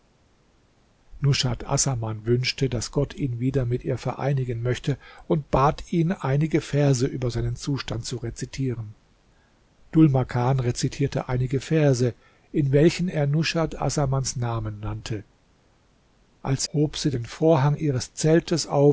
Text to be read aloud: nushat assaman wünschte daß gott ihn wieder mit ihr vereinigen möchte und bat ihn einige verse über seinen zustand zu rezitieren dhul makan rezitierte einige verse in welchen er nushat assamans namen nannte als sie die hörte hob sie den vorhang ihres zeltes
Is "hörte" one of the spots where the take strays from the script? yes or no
yes